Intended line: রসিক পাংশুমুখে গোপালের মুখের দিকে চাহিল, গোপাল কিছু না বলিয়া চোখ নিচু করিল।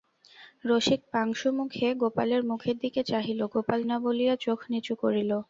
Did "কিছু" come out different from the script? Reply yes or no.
yes